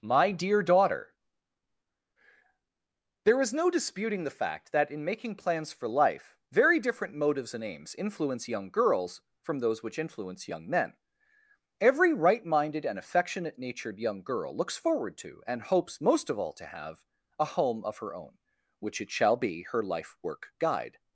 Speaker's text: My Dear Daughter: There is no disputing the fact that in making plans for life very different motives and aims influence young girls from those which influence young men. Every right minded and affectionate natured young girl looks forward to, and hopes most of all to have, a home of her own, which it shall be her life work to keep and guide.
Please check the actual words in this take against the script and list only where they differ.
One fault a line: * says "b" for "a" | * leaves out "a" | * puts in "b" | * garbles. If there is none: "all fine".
* leaves out "to keep and"